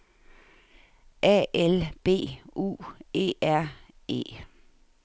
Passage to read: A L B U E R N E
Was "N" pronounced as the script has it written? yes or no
no